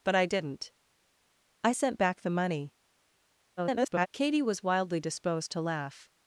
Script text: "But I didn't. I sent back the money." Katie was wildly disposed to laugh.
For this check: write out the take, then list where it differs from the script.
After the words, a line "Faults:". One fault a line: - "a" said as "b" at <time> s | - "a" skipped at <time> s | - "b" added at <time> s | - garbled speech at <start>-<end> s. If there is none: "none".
"But I didn't. I sent back the money." [garbled] Katie was wildly disposed to laugh.
Faults:
- garbled speech at 3.6-4.1 s